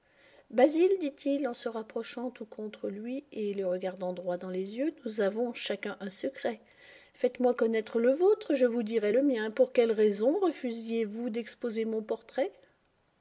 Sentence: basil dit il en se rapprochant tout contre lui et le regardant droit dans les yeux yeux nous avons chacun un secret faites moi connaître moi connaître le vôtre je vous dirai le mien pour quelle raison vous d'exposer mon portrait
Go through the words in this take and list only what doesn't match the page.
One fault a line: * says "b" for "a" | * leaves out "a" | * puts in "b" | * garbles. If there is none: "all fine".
* leaves out "yeux"
* leaves out "moi connaître"
* puts in "refusiez"